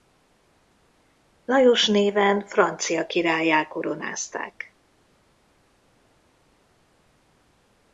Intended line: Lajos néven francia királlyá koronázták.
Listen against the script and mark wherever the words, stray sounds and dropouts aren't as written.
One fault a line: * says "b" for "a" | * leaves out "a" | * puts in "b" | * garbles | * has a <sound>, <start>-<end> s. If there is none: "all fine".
all fine